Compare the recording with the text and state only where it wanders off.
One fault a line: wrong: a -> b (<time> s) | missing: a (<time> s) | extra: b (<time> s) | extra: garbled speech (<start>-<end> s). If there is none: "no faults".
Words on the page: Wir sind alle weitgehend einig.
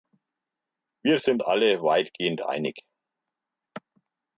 no faults